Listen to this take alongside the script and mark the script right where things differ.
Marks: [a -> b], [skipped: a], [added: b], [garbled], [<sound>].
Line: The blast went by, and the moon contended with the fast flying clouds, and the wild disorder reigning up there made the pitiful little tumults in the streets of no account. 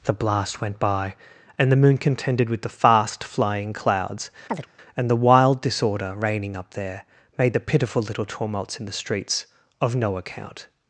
The blast went by, and the moon contended with the fast flying clouds, [chirp] and the wild disorder reigning up there made the pitiful little tumults in the streets of no account.